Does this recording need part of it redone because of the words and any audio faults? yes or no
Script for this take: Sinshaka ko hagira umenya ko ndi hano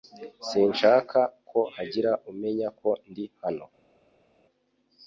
no